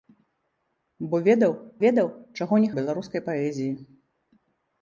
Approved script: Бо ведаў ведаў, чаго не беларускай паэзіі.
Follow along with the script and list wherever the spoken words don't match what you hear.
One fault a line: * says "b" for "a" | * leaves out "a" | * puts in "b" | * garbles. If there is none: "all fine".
all fine